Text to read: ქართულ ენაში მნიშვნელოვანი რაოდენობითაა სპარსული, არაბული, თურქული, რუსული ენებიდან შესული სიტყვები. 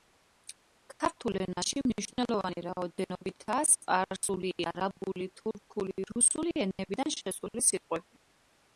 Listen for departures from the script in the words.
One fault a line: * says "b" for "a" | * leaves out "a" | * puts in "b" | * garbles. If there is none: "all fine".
all fine